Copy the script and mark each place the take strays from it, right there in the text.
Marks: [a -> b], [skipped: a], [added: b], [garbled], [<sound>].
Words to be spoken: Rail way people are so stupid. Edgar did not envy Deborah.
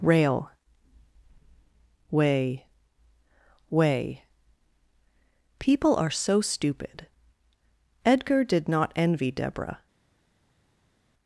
Rail way [added: way] people are so stupid. Edgar did not envy Deborah.